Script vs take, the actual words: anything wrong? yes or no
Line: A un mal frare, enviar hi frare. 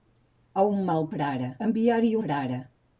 no